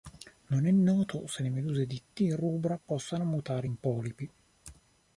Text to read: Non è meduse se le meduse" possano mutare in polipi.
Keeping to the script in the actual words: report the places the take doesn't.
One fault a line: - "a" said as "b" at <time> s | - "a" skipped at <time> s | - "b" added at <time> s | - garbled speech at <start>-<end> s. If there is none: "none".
- "meduse" said as "noto" at 0.7 s
- "di T rubra" added at 1.9 s